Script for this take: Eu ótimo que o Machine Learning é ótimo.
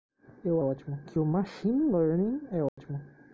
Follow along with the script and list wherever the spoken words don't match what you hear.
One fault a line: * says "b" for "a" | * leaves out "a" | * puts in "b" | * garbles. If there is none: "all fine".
all fine